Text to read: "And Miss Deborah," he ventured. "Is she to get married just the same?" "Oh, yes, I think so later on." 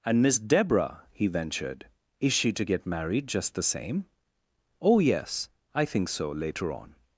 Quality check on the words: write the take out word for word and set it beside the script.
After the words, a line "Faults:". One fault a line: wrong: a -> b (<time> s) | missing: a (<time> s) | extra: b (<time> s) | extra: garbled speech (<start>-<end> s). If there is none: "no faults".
"And Miss Deborah," he ventured. "Is she to get married just the same?" "Oh, yes, I think so later on."
Faults:
no faults